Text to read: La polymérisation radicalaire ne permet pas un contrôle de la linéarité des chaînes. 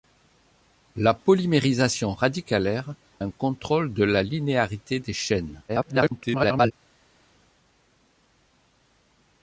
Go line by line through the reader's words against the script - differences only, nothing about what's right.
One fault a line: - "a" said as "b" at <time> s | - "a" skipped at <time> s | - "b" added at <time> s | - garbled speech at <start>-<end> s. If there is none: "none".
- "ne permet pas" skipped at 3.0 s
- garbled speech at 5.7-6.7 s